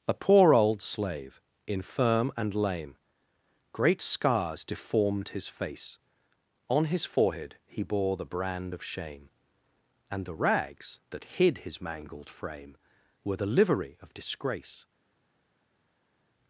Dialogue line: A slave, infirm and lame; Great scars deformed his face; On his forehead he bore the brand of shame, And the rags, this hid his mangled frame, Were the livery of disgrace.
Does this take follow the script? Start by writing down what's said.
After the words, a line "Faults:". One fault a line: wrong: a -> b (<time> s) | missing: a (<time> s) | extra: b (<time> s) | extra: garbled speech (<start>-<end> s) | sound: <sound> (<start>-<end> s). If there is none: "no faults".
A poor old slave, infirm and lame; Great scars deformed his face; On his forehead he bore the brand of shame, And the rags, that hid his mangled frame, Were the livery of disgrace.
Faults:
extra: poor old (0.1 s)
wrong: this -> that (11.1 s)